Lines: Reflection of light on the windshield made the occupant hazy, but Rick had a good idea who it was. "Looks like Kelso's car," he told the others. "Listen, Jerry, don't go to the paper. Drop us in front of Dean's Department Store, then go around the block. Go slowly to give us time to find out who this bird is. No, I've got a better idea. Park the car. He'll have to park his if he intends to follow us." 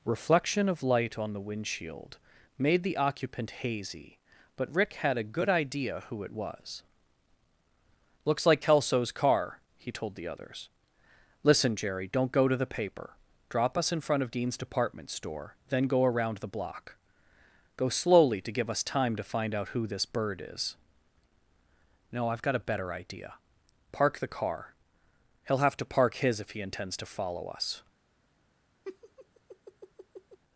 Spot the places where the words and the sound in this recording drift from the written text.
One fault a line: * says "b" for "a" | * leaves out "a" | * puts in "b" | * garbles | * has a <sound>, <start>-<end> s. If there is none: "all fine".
* has a laugh, 28.8-30.4 s